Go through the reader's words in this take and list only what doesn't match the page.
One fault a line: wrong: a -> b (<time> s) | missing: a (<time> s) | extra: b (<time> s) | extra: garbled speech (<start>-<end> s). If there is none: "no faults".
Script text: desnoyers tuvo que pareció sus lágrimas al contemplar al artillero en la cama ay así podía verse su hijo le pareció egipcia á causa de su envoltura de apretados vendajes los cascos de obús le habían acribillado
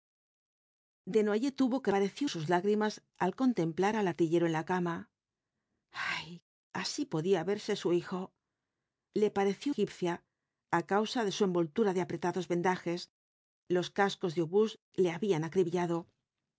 no faults